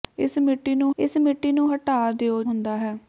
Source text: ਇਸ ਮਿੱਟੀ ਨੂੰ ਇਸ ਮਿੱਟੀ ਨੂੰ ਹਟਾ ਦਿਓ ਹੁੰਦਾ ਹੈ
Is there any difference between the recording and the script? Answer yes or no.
no